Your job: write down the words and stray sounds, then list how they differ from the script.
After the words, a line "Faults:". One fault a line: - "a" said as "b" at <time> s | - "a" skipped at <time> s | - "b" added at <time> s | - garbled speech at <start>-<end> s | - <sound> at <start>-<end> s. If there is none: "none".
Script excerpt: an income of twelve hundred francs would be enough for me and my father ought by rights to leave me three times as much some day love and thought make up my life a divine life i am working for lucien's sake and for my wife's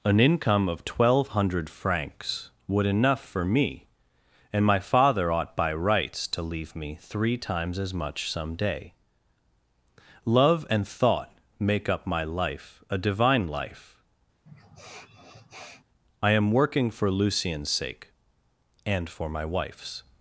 an income of twelve hundred francs would enough for me and my father ought by rights to leave me three times as much some day love and thought make up my life a divine life i am working for lucien's sake and for my wife's
Faults:
- "be" skipped at 2.9 s
- sniff at 14.5-15.8 s